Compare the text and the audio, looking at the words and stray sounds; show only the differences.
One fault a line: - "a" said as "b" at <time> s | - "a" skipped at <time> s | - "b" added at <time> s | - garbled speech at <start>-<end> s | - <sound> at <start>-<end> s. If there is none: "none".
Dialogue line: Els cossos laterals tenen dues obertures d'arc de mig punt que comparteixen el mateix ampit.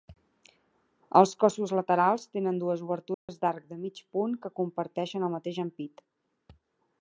- dropout at 3.1-3.3 s